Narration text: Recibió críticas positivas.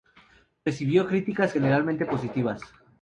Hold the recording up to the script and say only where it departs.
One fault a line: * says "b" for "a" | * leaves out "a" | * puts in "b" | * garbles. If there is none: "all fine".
* puts in "generalmente"